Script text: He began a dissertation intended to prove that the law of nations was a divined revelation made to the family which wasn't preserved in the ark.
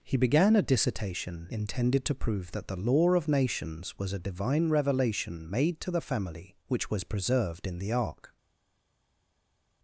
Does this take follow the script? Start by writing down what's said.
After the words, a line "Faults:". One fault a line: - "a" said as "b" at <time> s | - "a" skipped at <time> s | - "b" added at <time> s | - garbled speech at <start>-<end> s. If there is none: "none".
He began a dissertation intended to prove that the law of nations was a divine revelation made to the family which was preserved in the ark.
Faults:
- "divined" said as "divine" at 4.2 s
- "wasn't" said as "was" at 6.9 s